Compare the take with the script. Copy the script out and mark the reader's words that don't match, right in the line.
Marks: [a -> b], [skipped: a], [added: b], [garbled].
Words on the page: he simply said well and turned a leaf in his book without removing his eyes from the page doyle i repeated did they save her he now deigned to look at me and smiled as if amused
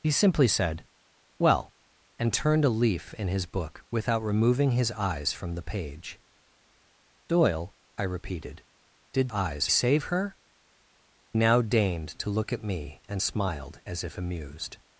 he simply said well and turned a leaf in his book without removing his eyes from the page doyle i repeated did [they -> eyes] save her [skipped: he] now deigned to look at me and smiled as if amused